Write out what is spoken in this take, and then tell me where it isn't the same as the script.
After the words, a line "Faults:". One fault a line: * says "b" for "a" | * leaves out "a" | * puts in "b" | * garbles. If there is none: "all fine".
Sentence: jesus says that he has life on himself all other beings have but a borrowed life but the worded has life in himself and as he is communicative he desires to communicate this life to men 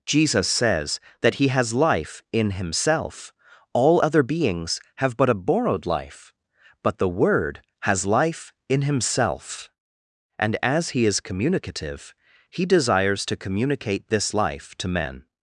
jesus says that he has life in himself all other beings have but a borrowed life but the word has life in himself and as he is communicative he desires to communicate this life to men
Faults:
* says "in" for "on"
* says "word" for "worded"